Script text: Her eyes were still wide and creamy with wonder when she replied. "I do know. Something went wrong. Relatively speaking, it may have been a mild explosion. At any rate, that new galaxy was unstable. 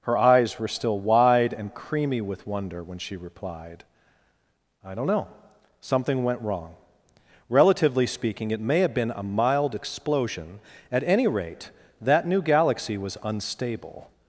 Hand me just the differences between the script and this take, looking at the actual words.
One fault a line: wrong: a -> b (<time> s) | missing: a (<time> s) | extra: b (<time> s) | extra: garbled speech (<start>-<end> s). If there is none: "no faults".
wrong: do -> don't (4.9 s)